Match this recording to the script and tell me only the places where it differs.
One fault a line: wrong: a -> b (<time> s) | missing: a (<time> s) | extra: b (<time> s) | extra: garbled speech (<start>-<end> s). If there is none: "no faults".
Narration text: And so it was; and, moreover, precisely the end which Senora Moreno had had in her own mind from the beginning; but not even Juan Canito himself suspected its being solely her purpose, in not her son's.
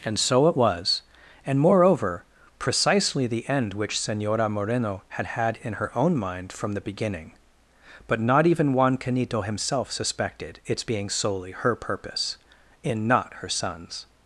no faults